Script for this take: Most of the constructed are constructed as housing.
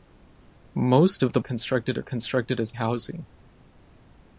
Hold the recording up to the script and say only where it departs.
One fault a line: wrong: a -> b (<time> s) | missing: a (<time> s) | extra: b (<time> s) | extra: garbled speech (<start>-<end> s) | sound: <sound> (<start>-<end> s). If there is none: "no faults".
no faults